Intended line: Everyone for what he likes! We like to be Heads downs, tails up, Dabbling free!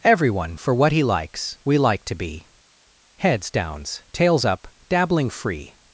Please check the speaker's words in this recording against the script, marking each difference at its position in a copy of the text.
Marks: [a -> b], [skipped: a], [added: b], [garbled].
Everyone for what he likes! We like to be Heads downs, tails up, Dabbling free!